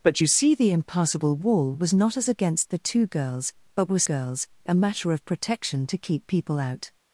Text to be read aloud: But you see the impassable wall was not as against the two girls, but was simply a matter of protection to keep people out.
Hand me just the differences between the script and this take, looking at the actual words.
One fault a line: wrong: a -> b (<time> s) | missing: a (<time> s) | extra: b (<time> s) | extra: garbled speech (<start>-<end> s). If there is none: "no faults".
wrong: simply -> girls (4.0 s)